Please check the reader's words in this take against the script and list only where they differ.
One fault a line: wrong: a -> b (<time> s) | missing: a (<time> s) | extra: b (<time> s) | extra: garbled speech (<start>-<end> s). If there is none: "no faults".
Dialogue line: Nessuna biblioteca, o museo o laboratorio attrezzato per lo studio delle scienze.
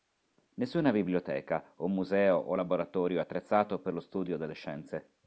no faults